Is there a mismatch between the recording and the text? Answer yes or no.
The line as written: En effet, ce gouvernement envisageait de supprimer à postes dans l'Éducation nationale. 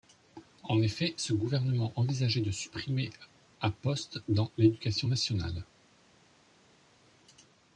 no